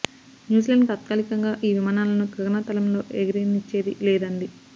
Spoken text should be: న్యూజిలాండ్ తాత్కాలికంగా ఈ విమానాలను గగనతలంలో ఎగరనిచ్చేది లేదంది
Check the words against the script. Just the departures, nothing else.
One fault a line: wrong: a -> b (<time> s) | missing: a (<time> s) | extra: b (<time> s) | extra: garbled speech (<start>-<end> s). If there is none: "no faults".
no faults